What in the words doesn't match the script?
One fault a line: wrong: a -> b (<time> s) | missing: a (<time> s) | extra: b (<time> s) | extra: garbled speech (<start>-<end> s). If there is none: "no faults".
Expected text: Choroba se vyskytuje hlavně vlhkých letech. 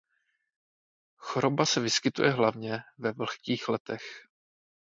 extra: ve (3.0 s)